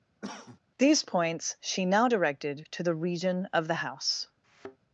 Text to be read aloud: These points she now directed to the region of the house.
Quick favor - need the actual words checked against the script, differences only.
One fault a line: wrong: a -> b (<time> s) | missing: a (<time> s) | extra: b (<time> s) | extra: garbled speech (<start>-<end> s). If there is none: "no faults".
no faults